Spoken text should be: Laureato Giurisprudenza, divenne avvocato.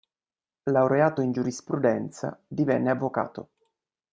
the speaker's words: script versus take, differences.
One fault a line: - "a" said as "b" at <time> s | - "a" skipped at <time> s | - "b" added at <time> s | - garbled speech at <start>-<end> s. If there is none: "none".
- "in" added at 1.2 s